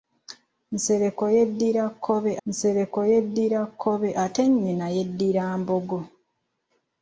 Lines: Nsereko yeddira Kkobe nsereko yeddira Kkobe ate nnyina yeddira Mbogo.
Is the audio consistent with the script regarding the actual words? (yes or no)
yes